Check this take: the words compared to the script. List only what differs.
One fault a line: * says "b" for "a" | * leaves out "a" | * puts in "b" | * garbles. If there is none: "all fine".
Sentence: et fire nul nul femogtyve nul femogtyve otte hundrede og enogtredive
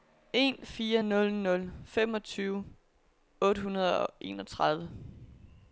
* says "en" for "et"
* leaves out "nul femogtyve"